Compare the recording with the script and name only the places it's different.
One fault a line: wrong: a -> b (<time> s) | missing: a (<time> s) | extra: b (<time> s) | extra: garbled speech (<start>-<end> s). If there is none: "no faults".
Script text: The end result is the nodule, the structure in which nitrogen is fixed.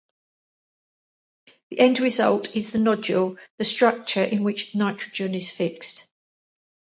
no faults